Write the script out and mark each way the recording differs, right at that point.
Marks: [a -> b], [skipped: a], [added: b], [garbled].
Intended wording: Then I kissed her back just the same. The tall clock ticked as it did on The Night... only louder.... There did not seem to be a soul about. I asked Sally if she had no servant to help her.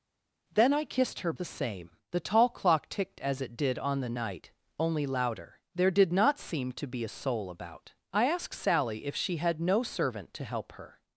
Then I kissed her [skipped: back just] the same. The tall clock ticked as it did on The Night... only louder.... There did not seem to be a soul about. I asked Sally if she had no servant to help her.